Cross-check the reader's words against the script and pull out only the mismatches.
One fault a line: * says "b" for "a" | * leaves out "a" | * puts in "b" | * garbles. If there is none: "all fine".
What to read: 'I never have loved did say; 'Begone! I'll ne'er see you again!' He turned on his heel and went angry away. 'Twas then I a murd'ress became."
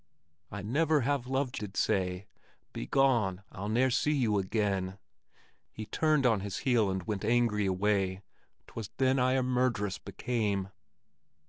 all fine